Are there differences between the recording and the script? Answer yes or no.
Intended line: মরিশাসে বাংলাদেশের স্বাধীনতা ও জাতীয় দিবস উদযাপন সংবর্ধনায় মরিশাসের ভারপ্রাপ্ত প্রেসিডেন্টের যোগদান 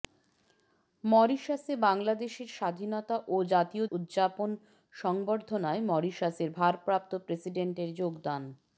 yes